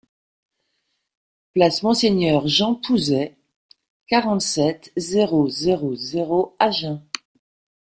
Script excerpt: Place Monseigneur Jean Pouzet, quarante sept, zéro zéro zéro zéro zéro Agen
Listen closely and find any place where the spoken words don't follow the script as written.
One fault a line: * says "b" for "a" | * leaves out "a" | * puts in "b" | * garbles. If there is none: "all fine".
* leaves out "zéro zéro"